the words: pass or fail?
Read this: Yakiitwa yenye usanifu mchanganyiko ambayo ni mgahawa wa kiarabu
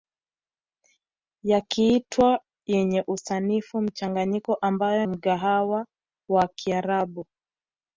fail